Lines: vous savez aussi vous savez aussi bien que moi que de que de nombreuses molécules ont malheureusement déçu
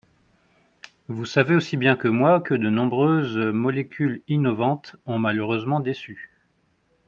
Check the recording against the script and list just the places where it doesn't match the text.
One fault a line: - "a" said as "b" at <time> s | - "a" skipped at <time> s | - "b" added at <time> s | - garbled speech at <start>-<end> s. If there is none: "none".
- "vous savez aussi" skipped at 1.8 s
- "que de" skipped at 2.7 s
- "innovantes" added at 4.3 s